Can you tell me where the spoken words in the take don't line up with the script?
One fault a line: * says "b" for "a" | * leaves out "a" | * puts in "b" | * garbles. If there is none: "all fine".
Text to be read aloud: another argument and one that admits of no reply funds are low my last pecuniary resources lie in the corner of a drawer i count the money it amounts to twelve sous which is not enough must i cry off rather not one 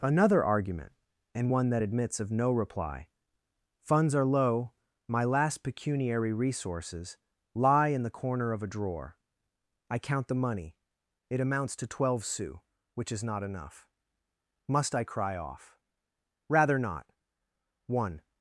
all fine